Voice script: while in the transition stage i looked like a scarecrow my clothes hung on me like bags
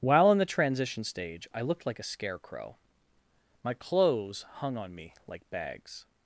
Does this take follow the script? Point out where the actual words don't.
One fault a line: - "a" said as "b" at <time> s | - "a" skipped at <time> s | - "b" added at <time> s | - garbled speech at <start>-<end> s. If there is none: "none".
none